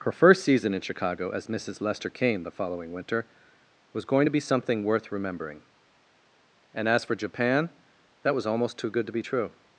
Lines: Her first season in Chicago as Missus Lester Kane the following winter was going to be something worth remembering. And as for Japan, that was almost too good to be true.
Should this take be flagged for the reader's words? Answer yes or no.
no